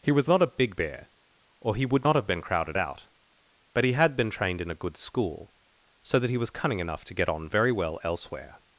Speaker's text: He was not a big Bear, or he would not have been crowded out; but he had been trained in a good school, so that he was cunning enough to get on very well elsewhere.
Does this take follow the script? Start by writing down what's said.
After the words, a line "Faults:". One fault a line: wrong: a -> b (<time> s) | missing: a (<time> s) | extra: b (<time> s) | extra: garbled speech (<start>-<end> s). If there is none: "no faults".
He was not a big Bear, or he would not have been crowded out; but he had been trained in a good school, so that he was cunning enough to get on very well elsewhere.
Faults:
no faults